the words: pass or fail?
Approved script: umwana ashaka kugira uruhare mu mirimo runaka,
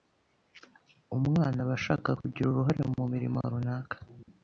fail